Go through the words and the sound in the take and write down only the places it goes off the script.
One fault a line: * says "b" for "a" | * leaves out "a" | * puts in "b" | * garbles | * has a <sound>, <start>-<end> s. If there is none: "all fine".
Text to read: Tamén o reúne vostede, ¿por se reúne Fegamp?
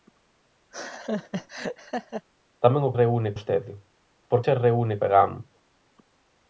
* has a laugh, 0.7-2.3 s